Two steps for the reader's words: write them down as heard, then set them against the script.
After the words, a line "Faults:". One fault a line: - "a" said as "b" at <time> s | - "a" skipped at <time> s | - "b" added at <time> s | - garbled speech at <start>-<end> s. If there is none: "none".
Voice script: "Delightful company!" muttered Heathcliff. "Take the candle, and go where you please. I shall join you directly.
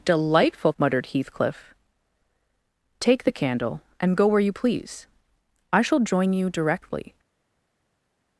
"Delightful!" muttered Heathcliff. "Take the candle, and go where you please. I shall join you directly.
Faults:
- "company" skipped at 0.7 s